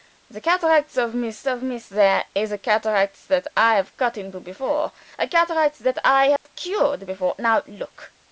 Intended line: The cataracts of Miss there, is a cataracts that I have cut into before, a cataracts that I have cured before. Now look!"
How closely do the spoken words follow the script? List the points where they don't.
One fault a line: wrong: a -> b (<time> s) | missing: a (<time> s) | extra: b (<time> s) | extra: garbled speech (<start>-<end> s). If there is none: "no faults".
extra: of Miss (1.5 s)